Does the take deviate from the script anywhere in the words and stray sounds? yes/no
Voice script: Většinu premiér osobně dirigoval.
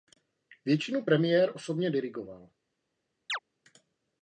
yes